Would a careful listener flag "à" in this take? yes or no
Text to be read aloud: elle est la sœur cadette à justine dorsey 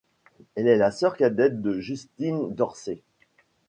yes